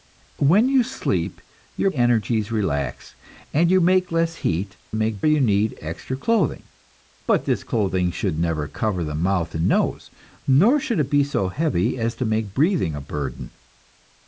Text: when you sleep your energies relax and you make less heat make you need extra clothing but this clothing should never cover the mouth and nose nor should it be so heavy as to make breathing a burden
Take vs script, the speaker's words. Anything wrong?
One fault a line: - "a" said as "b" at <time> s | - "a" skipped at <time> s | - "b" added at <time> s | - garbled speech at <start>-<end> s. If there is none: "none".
none